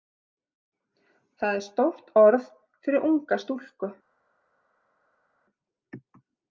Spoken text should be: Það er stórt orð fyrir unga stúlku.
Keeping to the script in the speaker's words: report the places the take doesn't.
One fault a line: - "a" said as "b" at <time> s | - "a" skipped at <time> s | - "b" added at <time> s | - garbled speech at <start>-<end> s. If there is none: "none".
none